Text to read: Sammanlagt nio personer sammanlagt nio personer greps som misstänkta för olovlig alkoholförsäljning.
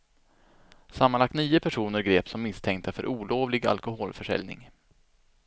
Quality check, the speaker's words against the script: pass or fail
fail